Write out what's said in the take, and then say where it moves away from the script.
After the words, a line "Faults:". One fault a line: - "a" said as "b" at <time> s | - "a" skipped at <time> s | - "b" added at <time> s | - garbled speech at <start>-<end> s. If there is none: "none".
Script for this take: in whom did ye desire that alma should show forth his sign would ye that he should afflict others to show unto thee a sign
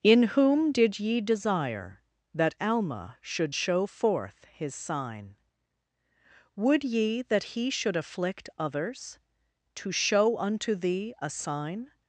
in whom did ye desire that alma should show forth his sign would ye that he should afflict others to show unto thee a sign
Faults:
none